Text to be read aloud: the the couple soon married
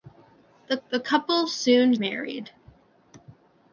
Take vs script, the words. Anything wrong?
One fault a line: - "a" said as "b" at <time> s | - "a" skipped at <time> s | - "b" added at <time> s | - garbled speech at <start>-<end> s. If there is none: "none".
none